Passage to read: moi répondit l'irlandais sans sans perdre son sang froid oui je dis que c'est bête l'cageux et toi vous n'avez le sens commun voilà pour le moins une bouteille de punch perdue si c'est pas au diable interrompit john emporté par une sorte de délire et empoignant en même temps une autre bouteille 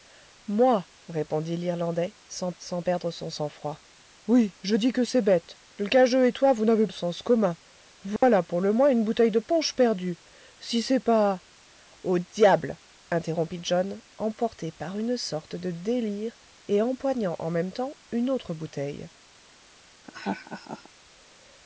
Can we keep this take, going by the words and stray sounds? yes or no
no